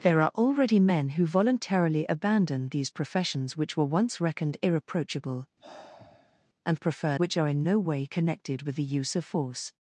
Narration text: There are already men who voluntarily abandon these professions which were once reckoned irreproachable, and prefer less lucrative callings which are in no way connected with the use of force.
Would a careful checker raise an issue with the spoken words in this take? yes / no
yes